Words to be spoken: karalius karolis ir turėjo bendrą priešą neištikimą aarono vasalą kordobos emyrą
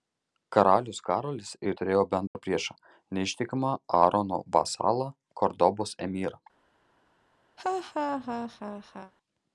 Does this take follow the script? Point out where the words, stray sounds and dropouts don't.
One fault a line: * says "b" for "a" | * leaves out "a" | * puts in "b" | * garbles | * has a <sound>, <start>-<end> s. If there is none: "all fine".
* has a dropout, 2.3-2.4 s
* has a laugh, 7.6-9.1 s